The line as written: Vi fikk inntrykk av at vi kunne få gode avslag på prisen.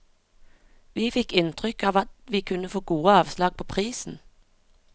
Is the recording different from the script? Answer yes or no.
no